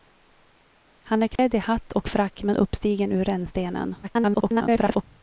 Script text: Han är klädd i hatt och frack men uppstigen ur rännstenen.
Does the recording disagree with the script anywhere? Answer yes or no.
yes